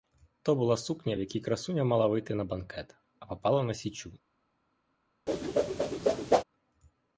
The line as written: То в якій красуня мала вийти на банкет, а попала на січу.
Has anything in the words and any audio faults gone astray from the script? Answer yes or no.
yes